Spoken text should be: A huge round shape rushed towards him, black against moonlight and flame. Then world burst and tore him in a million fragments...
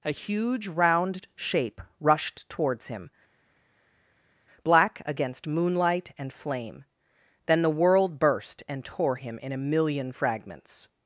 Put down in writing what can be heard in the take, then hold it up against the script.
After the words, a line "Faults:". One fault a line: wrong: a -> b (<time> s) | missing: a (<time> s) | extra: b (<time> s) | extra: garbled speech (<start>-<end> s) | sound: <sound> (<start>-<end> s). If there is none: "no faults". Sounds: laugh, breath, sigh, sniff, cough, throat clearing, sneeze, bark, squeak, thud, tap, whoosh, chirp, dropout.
A huge round shape rushed towards him, black against moonlight and flame. Then the world burst and tore him in a million fragments...
Faults:
extra: the (7.6 s)